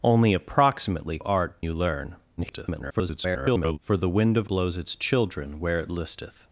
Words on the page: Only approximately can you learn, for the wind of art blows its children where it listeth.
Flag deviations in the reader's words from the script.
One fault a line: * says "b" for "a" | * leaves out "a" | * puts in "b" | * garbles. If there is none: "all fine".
* says "art" for "can"
* garbles
* leaves out "art"